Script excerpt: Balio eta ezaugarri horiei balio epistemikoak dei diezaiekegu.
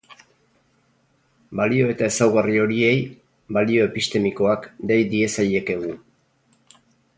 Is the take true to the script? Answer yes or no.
yes